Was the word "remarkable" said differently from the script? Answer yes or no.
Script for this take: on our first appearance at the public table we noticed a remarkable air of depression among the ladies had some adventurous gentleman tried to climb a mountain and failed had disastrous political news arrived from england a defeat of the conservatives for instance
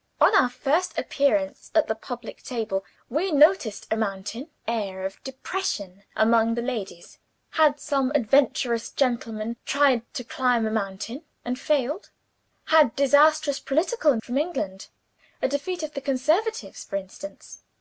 yes